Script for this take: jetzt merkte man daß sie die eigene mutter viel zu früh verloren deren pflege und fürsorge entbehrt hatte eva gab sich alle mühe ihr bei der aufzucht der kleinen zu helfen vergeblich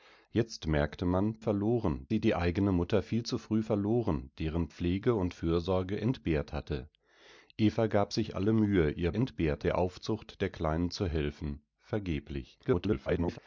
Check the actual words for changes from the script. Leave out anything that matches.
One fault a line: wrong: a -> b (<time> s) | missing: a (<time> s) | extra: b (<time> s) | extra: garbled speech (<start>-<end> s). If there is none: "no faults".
wrong: daß -> verloren (1.4 s)
wrong: bei -> entbehrt (9.1 s)
extra: garbled speech (12.6-13.4 s)